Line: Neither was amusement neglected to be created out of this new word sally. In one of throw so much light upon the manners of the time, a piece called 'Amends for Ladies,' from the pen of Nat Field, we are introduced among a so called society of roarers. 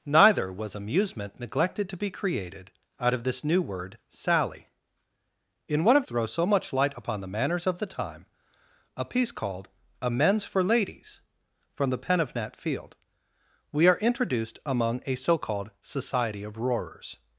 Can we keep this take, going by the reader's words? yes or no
yes